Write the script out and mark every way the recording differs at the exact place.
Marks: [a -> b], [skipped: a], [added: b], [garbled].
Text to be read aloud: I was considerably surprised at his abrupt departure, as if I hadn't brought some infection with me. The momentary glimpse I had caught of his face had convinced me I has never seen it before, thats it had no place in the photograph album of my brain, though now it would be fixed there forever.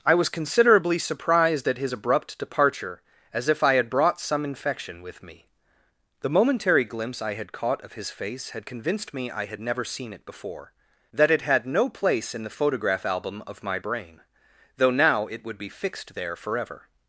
I was considerably surprised at his abrupt departure, as if I [hadn't -> had] brought some infection with me. The momentary glimpse I had caught of his face had convinced me I [has -> had] never seen it before, [thats -> that] it had no place in the photograph album of my brain, though now it would be fixed there forever.